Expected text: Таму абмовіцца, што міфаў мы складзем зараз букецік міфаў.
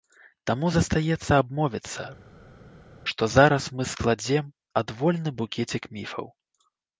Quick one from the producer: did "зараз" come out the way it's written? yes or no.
no